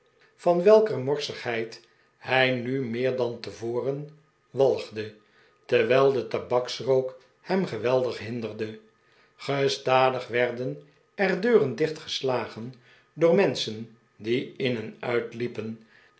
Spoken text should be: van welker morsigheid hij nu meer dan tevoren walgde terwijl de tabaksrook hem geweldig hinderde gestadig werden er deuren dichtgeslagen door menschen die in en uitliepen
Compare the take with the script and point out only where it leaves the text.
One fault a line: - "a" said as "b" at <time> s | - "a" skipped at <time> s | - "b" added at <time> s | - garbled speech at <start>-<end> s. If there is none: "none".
none